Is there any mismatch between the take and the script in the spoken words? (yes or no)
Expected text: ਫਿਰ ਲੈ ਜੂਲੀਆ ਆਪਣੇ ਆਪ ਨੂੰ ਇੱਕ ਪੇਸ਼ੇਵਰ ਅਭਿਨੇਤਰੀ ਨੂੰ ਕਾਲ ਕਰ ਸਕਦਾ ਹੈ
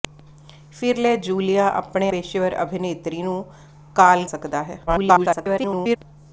yes